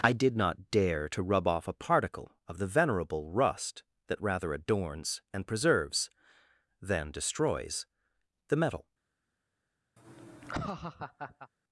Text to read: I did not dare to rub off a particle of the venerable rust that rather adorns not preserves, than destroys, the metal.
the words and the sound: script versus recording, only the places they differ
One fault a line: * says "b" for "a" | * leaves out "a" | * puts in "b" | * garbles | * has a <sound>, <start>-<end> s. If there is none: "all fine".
* says "and" for "not"
* has a laugh, 10.0-11.5 s